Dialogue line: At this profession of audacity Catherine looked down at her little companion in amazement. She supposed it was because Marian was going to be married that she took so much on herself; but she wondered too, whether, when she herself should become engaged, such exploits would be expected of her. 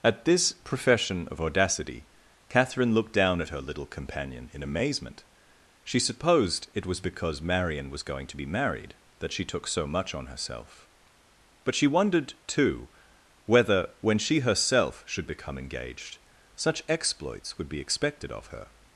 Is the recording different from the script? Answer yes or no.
no